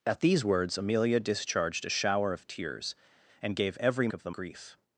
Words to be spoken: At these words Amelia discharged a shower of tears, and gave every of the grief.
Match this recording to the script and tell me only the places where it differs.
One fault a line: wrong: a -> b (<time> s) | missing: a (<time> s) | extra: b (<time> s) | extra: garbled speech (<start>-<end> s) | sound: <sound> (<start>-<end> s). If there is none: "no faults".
no faults